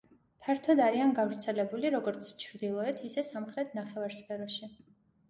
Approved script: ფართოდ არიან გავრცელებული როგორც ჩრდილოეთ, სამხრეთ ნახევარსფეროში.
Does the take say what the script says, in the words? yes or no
no